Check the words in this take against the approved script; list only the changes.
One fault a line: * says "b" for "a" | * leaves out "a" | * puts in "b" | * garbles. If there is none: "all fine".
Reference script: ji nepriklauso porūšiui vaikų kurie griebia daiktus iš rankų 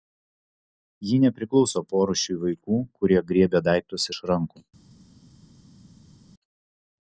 all fine